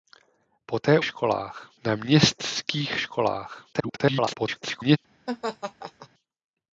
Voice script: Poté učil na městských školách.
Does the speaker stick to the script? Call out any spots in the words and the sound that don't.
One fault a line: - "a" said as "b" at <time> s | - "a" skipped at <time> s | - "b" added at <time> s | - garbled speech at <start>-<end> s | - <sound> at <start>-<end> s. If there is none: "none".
- "učil" said as "školách" at 1.0 s
- garbled speech at 3.7-5.0 s
- laugh at 5.3-6.1 s